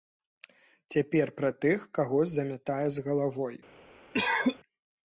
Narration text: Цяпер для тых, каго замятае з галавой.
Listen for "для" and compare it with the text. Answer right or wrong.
wrong